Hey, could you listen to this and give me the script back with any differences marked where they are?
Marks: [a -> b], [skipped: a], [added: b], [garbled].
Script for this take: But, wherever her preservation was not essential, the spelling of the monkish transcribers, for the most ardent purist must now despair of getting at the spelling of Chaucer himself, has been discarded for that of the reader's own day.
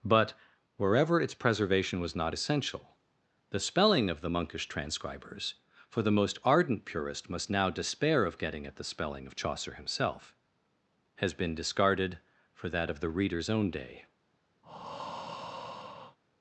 But, wherever [her -> its] preservation was not essential, the spelling of the monkish transcribers, for the most ardent purist must now despair of getting at the spelling of Chaucer himself, has been discarded for that of the reader's own day.